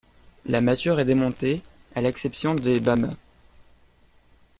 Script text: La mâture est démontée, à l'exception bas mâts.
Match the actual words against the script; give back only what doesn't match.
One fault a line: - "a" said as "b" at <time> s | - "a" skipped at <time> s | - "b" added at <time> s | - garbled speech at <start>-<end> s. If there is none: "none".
- "des" added at 2.5 s